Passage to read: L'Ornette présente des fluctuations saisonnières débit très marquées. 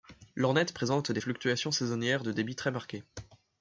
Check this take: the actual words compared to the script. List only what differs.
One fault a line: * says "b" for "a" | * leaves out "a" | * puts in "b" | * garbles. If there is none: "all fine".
* puts in "de"